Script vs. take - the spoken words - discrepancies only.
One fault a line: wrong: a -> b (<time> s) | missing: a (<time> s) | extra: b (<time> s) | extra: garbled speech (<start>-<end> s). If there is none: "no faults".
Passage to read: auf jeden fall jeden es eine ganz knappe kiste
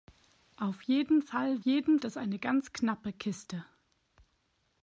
no faults